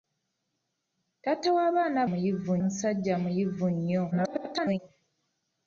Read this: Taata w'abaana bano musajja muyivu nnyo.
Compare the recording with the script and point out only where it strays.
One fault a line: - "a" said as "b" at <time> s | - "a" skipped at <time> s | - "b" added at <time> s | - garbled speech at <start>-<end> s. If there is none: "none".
- "bano" said as "muyivu" at 2.1 s
- garbled speech at 4.1-4.8 s